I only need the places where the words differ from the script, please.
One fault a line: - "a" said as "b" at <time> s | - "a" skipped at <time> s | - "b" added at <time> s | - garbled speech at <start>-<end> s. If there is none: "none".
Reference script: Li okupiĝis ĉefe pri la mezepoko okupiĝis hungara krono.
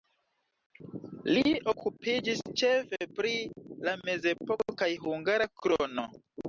- "okupiĝis" said as "kaj" at 4.8 s